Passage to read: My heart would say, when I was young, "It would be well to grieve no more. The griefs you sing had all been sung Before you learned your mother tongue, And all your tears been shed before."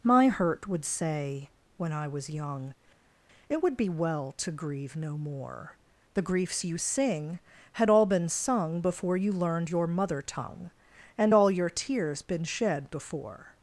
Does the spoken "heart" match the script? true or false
false